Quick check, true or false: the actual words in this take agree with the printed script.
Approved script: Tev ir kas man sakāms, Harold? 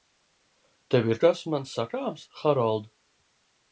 true